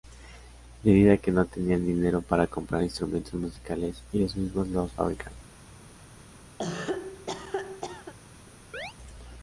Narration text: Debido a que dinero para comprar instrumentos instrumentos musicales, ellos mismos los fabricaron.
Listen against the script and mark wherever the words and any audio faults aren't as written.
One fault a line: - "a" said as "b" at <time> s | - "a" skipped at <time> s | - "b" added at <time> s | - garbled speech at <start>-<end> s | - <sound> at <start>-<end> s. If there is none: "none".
- "no tenían" added at 1.3 s
- "instrumentos" skipped at 3.3 s
- cough at 6.6-8.1 s
- chirp at 8.7-8.9 s